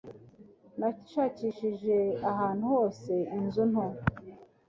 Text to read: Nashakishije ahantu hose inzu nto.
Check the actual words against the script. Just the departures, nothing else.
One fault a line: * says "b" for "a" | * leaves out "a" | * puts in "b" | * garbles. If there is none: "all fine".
all fine